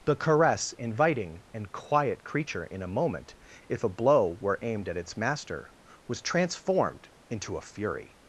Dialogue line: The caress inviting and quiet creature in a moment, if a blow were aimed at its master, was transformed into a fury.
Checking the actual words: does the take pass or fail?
pass